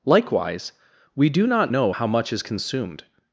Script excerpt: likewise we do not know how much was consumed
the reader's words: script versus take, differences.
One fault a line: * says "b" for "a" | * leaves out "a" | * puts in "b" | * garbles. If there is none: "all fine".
* says "is" for "was"